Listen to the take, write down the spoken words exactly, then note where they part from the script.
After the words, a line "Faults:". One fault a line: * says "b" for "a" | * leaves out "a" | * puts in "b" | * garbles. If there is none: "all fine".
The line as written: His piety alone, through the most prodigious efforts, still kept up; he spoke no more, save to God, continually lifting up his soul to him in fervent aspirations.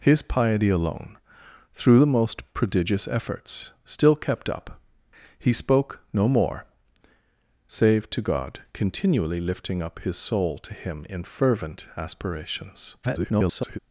His piety alone, through the most prodigious efforts, still kept up; he spoke no more, save to God, continually lifting up his soul to him in fervent aspirations. [garbled]
Faults:
* garbles